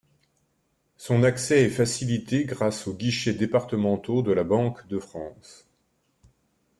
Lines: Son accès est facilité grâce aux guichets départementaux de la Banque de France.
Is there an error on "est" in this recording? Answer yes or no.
no